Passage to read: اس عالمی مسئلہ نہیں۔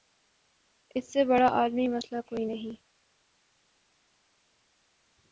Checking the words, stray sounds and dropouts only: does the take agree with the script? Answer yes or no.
no